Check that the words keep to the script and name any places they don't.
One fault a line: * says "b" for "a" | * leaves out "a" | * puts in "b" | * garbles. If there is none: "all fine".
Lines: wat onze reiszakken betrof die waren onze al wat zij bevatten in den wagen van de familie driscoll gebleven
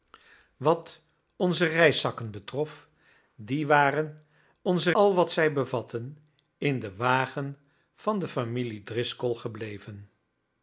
all fine